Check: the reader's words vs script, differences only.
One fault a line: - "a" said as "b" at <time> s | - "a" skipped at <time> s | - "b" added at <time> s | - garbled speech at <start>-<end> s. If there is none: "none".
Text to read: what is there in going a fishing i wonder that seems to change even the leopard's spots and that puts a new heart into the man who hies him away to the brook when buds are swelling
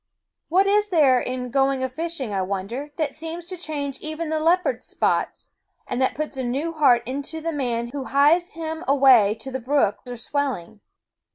- "when buds" skipped at 10.0 s